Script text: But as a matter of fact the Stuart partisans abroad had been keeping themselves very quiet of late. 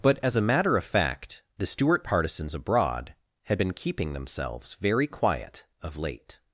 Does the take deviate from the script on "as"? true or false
false